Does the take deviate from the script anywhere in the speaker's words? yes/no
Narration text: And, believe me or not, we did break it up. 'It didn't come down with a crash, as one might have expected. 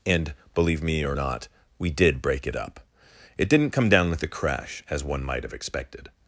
no